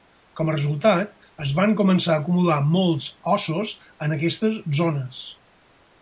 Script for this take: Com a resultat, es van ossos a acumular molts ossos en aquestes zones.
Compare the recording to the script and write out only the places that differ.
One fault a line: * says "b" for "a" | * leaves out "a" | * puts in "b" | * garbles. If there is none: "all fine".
* says "començar" for "ossos"